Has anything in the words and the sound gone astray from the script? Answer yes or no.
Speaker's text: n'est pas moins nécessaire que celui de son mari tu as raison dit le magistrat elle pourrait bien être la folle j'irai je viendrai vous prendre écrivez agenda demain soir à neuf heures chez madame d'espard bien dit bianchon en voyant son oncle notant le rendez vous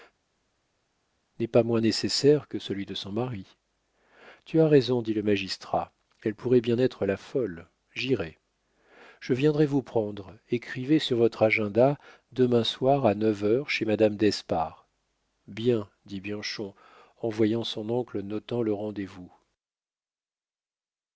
yes